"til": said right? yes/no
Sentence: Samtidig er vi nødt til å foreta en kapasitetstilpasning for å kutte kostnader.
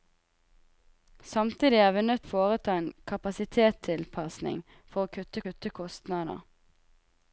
no